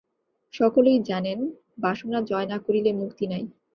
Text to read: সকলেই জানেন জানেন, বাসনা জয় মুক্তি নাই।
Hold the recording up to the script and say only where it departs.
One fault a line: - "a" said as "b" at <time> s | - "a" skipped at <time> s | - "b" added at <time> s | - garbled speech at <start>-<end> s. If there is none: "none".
- "জানেন" skipped at 1.4 s
- "না করিলে" added at 2.5 s